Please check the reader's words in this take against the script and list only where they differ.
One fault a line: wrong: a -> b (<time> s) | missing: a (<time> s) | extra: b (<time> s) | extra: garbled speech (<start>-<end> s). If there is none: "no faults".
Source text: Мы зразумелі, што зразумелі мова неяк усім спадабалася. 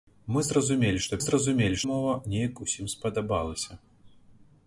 no faults